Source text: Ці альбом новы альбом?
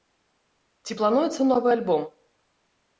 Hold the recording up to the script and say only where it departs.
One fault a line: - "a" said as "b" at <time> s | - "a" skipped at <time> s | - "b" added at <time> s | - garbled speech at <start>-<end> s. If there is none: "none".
- "альбом" said as "плануецца" at 1.0 s